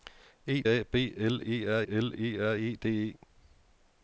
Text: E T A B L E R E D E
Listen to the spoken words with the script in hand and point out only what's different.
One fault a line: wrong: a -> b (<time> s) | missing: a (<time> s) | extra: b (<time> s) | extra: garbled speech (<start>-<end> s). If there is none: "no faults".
missing: T (0.6 s)
extra: L E R (1.9 s)